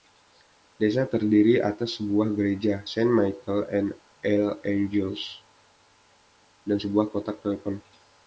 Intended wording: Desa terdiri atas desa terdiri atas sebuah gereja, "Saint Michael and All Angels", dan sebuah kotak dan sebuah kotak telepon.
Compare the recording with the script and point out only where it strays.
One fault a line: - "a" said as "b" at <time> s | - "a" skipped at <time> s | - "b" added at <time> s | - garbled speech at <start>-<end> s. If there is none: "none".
- "desa terdiri atas" skipped at 2.0 s
- "dan sebuah kotak" skipped at 7.4 s